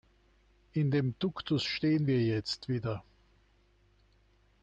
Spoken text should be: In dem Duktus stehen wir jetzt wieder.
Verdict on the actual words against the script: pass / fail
pass